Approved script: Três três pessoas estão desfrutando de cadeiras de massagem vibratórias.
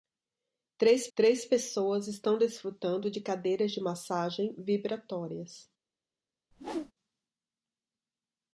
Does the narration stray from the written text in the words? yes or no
no